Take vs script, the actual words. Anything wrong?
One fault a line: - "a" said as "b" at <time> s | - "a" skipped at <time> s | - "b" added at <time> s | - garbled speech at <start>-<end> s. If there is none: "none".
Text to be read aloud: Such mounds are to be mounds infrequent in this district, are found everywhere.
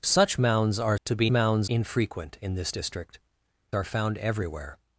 none